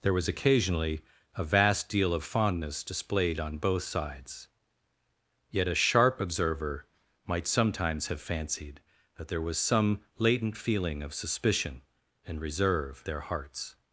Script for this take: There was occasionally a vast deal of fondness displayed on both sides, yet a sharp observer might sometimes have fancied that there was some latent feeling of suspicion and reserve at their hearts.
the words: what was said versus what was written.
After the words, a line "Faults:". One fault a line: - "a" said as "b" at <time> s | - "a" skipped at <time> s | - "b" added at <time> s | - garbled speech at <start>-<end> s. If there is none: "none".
There was occasionally a vast deal of fondness displayed on both sides, yet a sharp observer might sometimes have fancied that there was some latent feeling of suspicion and reserve their hearts.
Faults:
- "at" skipped at 13.1 s